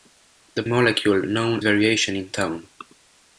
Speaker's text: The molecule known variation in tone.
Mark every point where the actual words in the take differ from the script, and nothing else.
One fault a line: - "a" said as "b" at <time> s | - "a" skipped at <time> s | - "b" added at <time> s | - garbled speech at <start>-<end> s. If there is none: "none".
none